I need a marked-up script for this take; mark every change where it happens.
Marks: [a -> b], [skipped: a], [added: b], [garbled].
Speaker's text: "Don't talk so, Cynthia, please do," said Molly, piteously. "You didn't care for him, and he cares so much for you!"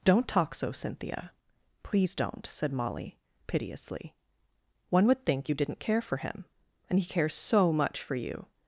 "Don't talk so, Cynthia, please [do," -> don't] said Molly, piteously. [added: One would think] "You didn't care for him, and he cares so much for you!"